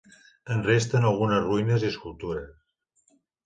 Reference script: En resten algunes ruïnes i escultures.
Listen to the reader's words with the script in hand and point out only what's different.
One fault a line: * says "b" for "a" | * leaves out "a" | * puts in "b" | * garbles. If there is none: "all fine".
all fine